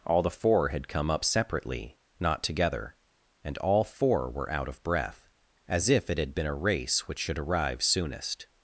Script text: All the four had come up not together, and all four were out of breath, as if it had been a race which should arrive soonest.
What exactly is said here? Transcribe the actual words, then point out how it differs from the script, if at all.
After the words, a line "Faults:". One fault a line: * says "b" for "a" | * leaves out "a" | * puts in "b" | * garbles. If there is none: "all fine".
All the four had come up separately, not together, and all four were out of breath, as if it had been a race which should arrive soonest.
Faults:
* puts in "separately"